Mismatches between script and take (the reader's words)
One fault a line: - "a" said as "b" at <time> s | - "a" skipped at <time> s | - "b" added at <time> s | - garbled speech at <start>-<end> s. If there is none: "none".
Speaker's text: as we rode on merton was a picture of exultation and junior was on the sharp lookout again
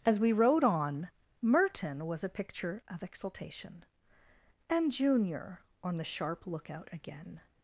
- "was" skipped at 5.6 s